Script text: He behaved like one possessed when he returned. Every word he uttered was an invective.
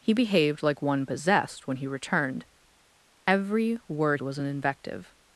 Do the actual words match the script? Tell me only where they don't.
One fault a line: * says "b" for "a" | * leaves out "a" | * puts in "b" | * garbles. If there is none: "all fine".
* leaves out "he uttered"